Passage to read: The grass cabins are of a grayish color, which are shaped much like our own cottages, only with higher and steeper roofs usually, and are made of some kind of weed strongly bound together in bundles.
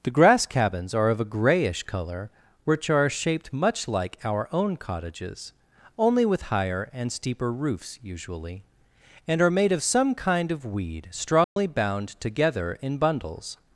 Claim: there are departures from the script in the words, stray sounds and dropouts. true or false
true